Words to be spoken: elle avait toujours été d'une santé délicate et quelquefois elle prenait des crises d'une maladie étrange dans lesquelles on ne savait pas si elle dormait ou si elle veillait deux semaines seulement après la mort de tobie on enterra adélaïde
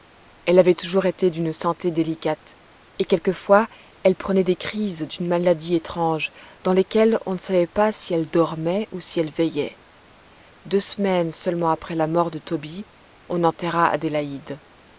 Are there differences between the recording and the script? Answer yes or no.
no